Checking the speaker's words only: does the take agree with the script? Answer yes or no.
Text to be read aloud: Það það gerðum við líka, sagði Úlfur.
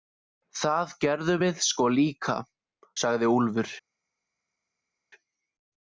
no